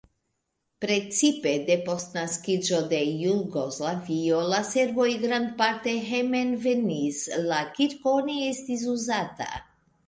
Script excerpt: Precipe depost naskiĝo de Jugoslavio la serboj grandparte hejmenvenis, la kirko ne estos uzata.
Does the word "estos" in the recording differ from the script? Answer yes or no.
yes